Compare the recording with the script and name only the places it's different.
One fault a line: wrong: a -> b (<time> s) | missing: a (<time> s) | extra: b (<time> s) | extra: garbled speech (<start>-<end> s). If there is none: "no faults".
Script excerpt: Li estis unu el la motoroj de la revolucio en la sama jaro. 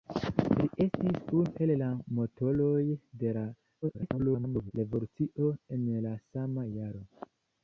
extra: garbled speech (3.8-4.7 s)